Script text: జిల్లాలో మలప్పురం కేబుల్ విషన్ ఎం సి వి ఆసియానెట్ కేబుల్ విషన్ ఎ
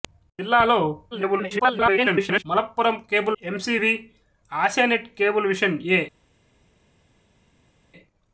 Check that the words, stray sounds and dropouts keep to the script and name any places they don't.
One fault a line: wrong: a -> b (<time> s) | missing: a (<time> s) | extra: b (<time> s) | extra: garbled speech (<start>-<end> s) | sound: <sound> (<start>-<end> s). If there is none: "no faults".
extra: garbled speech (1.1-2.4 s)
missing: విషన్ (3.4 s)